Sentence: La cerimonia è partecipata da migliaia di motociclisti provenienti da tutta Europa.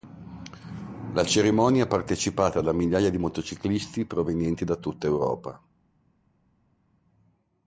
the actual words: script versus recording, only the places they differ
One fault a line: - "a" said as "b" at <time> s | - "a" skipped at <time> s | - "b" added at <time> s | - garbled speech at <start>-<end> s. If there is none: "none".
none